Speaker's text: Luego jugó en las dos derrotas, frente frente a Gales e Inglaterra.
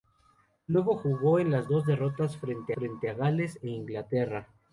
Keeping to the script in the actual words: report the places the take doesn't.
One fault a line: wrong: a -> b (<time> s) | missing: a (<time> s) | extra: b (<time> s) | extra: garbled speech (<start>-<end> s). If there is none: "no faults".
no faults